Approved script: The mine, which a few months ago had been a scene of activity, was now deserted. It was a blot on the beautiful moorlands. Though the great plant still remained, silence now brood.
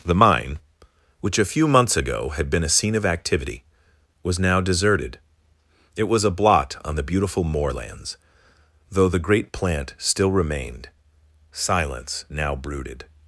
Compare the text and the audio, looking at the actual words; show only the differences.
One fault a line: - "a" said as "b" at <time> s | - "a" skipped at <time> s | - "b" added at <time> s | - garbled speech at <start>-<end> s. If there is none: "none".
- "brood" said as "brooded" at 12.5 s